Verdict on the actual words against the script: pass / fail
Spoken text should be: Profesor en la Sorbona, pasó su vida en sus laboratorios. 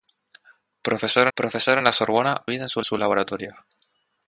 fail